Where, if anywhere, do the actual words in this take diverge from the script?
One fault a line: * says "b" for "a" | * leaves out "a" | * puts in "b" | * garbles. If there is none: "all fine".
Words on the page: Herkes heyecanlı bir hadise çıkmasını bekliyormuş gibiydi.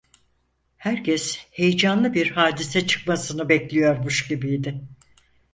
all fine